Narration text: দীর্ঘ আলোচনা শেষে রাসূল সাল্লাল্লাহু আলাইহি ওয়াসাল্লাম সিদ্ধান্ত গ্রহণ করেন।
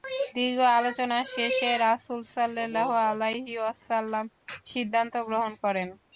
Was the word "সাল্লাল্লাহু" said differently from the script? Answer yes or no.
no